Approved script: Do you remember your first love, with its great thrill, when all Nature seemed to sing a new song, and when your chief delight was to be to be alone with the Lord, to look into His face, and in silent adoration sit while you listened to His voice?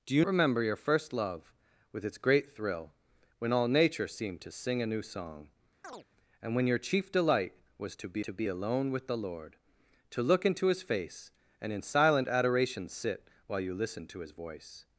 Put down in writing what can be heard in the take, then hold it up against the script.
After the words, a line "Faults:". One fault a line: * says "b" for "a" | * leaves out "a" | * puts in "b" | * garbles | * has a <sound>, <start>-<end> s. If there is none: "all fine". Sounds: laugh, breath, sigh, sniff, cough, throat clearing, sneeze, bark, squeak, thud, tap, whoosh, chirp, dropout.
Do you remember your first love, with its great thrill, when all Nature seemed to sing a new song, and when your chief delight was to be to be alone with the Lord, to look into His face, and in silent adoration sit while you listened to His voice?
Faults:
* has a chirp, 5.8-6.1 s